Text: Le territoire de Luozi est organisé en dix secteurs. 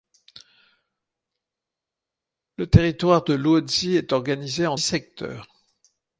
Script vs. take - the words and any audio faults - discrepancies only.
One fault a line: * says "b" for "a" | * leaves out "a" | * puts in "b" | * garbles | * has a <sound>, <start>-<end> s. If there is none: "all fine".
* leaves out "dix"